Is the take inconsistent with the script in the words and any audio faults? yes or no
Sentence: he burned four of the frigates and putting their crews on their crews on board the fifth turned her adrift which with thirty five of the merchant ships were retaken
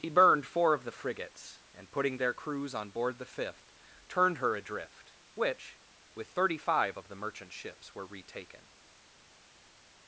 yes